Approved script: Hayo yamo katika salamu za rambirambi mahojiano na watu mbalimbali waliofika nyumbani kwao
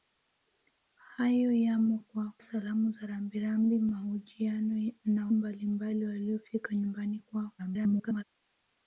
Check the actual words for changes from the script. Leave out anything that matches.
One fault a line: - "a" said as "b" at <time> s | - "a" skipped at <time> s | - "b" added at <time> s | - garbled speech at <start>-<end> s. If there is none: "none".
- "katika" said as "kwao" at 2.0 s
- "watu" skipped at 5.3 s
- garbled speech at 7.6-8.2 s